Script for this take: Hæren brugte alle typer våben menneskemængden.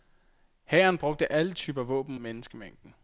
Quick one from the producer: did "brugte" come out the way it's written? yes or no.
yes